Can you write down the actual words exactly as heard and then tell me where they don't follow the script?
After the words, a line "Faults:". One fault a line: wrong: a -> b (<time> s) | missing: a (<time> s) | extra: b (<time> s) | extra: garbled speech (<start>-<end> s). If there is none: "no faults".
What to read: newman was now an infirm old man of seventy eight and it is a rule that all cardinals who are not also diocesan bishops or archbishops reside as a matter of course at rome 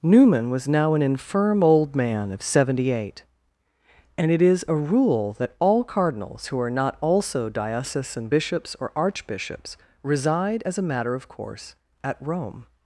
newman was now an infirm old man of seventy eight and it is a rule that all cardinals who are not also diocesan bishops or archbishops reside as a matter of course at rome
Faults:
no faults